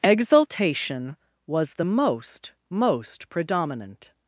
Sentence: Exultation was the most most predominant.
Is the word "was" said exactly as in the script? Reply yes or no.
yes